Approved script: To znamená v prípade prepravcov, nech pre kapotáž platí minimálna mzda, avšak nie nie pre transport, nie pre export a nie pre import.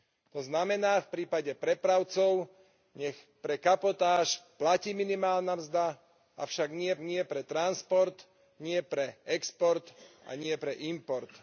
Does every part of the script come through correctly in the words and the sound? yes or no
yes